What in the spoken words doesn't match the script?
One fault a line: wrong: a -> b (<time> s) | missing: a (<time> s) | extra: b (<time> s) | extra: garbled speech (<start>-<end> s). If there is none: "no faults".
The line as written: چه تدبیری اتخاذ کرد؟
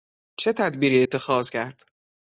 no faults